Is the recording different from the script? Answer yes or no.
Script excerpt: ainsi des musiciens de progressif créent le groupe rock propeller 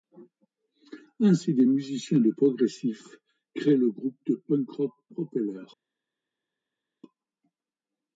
yes